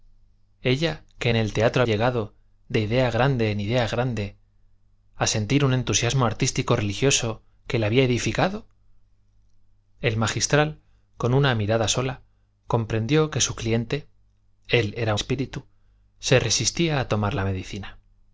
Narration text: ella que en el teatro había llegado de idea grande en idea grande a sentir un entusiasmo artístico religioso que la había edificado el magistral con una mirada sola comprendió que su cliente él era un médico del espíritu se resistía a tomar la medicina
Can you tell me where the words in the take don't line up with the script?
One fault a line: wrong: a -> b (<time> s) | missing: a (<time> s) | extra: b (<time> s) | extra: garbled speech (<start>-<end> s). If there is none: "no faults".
missing: había (1.8 s)
missing: un médico del (15.1 s)